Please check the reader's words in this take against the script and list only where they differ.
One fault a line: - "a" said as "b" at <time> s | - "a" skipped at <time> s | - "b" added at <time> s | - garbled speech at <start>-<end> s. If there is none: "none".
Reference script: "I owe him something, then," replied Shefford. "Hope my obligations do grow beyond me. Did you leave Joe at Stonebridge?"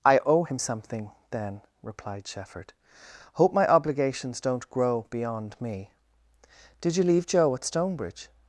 - "do" said as "don't" at 4.4 s